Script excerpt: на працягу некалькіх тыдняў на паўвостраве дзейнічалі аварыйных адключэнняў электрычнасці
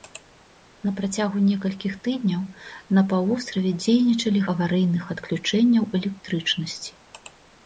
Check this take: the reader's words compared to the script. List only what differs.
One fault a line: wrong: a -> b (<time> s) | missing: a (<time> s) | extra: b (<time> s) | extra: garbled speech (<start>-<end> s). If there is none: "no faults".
no faults